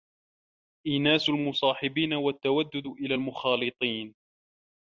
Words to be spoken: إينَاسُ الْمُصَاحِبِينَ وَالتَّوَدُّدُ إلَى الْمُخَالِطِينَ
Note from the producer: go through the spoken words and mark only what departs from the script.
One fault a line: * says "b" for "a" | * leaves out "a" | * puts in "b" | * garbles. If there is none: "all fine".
all fine